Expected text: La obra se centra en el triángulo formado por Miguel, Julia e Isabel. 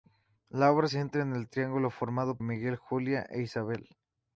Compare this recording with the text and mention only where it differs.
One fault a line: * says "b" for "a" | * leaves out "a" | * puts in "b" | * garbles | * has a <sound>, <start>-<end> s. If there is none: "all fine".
* leaves out "se"
* leaves out "por"